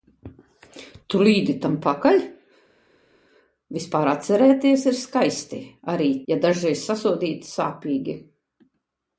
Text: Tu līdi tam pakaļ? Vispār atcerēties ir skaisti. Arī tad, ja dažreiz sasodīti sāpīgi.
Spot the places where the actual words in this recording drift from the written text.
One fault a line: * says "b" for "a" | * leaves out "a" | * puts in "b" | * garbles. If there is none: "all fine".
* leaves out "tad"